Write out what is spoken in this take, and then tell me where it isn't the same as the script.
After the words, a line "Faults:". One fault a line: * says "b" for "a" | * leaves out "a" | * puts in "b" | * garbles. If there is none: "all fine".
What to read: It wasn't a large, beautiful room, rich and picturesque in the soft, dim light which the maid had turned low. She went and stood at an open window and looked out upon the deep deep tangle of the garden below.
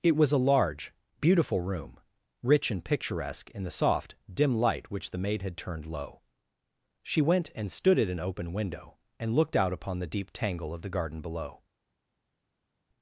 It was a large, beautiful room, rich and picturesque in the soft, dim light which the maid had turned low. She went and stood at an open window and looked out upon the deep tangle of the garden below.
Faults:
* says "was" for "wasn't"
* leaves out "deep"